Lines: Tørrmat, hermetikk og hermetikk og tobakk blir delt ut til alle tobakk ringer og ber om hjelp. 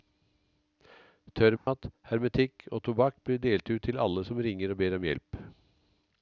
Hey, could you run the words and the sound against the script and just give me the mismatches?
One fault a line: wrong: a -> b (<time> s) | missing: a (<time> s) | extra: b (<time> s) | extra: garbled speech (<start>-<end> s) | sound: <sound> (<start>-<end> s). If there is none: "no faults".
sound: dropout (1.6-1.7 s)
missing: hermetikk og (2.8 s)
wrong: tobakk -> som (4.2 s)